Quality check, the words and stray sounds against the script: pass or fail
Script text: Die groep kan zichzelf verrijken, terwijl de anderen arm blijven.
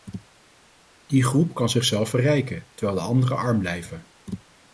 pass